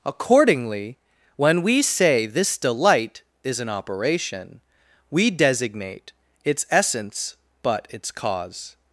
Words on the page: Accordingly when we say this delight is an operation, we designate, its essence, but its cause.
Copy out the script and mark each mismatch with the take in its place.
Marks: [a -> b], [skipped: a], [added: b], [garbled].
Accordingly when we say this delight is an operation, we designate, its essence, but its cause.